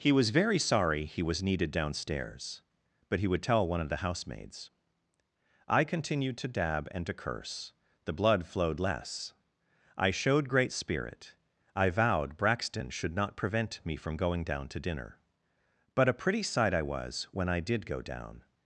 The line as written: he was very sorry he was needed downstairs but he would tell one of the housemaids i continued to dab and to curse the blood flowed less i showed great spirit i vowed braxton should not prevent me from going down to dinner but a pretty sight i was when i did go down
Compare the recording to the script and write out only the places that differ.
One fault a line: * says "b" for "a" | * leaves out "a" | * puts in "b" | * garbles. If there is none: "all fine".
all fine